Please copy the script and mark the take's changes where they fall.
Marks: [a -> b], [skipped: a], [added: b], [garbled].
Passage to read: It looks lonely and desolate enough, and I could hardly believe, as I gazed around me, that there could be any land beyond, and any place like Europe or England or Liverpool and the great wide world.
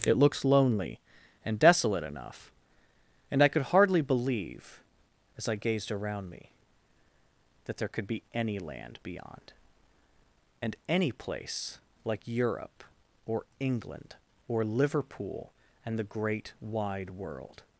It looks lonely and desolate enough, and I could hardly believe, as I gazed around me, that there could be any land beyond, and any place like Europe or England or Liverpool and the great wide world.